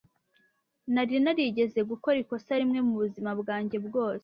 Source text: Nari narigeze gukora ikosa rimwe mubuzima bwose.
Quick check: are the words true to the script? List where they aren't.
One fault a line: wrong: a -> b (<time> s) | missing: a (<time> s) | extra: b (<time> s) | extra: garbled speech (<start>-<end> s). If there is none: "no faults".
extra: bwanjye (3.4 s)